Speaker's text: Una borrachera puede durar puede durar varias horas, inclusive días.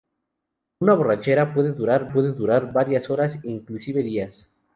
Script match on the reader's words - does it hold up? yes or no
yes